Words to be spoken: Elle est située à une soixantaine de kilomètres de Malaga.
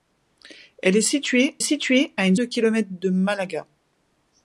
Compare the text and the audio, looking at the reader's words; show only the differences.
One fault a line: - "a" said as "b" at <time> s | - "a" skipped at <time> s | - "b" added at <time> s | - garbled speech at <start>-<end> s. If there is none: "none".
- "située" added at 1.6 s
- "soixantaine" skipped at 2.3 s